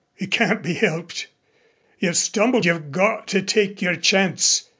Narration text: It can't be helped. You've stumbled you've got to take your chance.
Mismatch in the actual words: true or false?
false